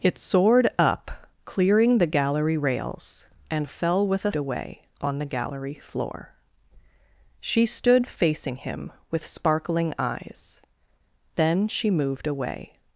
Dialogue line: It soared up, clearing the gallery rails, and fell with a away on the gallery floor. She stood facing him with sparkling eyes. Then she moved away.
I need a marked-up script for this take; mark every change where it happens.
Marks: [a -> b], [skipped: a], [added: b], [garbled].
It soared up, clearing the gallery rails, and fell with a away on the gallery floor. She stood facing him with sparkling eyes. Then she moved away.